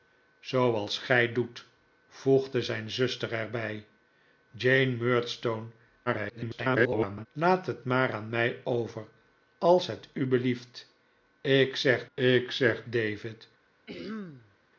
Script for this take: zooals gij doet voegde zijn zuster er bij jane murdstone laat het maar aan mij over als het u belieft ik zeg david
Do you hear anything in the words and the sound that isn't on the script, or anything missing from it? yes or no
yes